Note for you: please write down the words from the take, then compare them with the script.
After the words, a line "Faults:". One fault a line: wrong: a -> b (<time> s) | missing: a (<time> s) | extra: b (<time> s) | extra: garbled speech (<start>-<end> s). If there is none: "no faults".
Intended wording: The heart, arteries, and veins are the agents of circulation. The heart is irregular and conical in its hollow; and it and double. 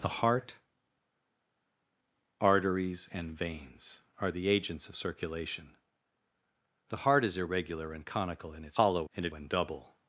The heart, arteries, and veins are the agents of circulation. The heart is irregular and conical in its hollow; and it and double.
Faults:
no faults